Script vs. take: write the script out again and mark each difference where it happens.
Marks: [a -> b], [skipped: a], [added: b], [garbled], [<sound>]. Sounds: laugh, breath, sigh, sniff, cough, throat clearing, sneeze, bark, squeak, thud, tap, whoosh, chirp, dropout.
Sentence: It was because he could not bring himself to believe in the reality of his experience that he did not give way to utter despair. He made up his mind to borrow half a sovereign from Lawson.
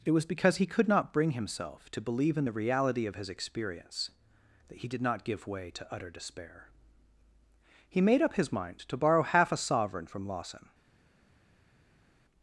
It was because he could not bring himself to believe in the reality of his experience that he did not give way to utter despair. He made up his mind to borrow half a sovereign from Lawson.